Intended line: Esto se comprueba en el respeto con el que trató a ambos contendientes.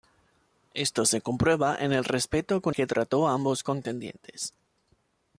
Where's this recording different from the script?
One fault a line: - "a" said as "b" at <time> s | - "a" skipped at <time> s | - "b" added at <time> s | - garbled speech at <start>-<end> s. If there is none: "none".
- "el" skipped at 2.8 s